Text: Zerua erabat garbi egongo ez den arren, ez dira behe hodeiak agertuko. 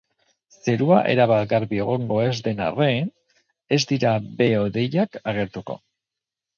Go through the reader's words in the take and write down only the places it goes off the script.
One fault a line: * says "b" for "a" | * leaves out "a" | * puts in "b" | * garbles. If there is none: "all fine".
all fine